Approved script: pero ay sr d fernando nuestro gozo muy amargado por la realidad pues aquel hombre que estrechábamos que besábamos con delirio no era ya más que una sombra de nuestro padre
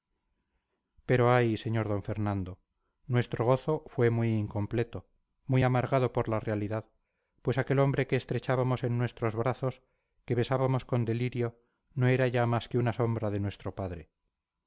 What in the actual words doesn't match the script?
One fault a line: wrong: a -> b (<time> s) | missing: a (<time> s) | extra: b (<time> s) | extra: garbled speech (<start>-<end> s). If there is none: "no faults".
extra: fue (3.9 s)
extra: incompleto muy (4.4 s)
extra: en nuestros brazos (8.8 s)